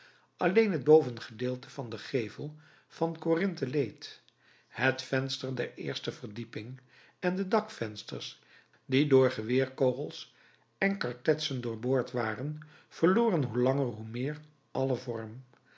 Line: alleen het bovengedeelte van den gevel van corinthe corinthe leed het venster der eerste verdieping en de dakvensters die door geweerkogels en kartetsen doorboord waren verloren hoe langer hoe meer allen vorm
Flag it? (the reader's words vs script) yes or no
yes